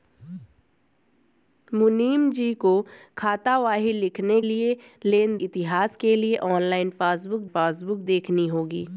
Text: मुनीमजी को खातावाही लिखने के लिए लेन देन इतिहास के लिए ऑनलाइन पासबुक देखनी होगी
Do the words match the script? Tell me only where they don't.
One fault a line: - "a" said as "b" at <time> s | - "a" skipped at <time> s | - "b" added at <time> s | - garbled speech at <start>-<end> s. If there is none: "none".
- "के" skipped at 4.4 s
- "देन" skipped at 5.4 s
- "पासबुक" added at 7.4 s